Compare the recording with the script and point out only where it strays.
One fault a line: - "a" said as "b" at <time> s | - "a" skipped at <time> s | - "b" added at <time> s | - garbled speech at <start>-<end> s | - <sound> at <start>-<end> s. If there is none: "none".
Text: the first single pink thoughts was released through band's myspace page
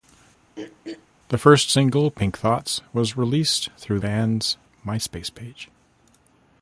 - throat clearing at 0.6-1.1 s